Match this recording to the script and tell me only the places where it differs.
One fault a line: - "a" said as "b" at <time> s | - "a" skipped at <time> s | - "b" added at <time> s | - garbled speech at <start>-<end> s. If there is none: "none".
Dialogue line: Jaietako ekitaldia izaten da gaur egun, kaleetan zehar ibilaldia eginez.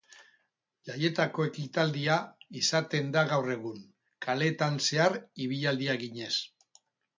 none